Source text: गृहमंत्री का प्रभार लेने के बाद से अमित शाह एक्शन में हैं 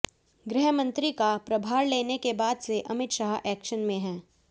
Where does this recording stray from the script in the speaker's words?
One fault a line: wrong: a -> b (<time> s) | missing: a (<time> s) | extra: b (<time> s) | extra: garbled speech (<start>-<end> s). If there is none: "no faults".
no faults